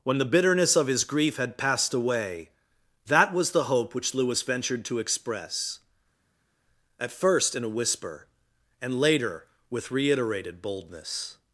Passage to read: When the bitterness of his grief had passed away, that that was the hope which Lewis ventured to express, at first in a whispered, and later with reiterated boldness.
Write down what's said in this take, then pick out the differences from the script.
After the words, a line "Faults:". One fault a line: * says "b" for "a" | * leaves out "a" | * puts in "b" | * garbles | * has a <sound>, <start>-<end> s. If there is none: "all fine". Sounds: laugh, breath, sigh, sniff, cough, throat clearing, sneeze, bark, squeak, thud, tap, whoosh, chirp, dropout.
When the bitterness of his grief had passed away, that was the hope which Lewis ventured to express, at first in a whisper, and later with reiterated boldness.
Faults:
* leaves out "that"
* says "whisper" for "whispered"